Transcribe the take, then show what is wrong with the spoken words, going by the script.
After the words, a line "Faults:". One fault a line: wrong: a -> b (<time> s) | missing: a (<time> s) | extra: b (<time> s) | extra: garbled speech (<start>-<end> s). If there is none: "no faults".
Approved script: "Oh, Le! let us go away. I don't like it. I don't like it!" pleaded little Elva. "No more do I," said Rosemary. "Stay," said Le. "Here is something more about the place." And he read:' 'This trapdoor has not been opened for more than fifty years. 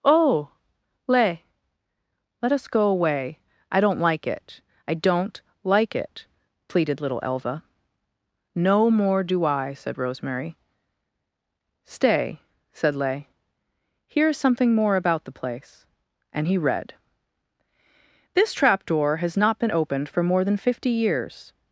"Oh, Le! let us go away. I don't like it. I don't like it!" pleaded little Elva. "No more do I," said Rosemary. "Stay," said Le. "Here is something more about the place." And he read:' 'This trapdoor has not been opened for more than fifty years.
Faults:
no faults